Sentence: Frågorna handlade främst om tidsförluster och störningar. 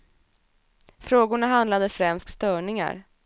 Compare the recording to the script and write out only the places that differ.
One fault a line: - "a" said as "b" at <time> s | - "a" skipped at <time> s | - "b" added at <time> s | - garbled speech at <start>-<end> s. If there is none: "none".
- "om tidsförluster och" skipped at 2.3 s